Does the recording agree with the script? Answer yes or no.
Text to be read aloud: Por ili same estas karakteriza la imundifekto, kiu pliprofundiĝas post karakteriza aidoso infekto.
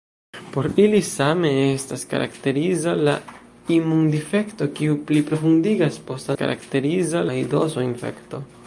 yes